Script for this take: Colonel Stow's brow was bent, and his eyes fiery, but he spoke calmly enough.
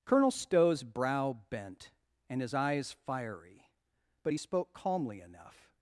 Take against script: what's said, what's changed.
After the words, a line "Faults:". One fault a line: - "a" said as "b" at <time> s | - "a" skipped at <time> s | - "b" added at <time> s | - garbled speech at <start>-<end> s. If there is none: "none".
Colonel Stow's brow bent, and his eyes fiery, but he spoke calmly enough.
Faults:
- "was" skipped at 1.4 s